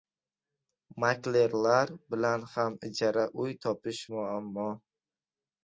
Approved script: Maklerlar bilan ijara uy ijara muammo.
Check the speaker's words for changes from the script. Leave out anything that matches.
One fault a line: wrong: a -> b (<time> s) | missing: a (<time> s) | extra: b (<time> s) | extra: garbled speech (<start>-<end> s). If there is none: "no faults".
extra: ham (2.5 s)
wrong: ijara -> topish (3.6 s)